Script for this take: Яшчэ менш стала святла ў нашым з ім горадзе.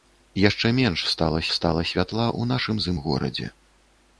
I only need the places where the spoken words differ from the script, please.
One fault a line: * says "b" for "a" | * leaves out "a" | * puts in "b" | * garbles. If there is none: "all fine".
* puts in "стала"